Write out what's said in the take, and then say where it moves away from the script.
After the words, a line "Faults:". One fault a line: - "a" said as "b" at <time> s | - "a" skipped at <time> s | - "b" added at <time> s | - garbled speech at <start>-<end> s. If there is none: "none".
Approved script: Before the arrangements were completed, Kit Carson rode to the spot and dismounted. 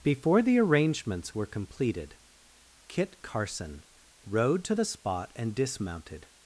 Before the arrangements were completed, Kit Carson rode to the spot and dismounted.
Faults:
none